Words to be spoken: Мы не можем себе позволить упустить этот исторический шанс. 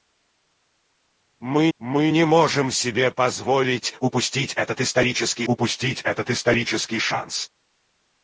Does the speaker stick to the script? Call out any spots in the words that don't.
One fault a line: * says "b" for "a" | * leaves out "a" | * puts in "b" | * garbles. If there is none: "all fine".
* puts in "мы"
* puts in "упустить этот исторический"